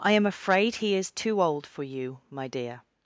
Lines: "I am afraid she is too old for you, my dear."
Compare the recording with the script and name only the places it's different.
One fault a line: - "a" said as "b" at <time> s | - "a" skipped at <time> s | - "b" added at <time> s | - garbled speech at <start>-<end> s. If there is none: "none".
- "she" said as "he" at 0.8 s